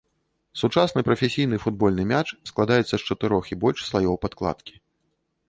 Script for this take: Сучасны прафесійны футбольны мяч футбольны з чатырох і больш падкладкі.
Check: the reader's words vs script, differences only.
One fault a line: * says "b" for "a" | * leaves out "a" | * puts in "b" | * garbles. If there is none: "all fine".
* says "складаецца" for "футбольны"
* puts in "слаёў"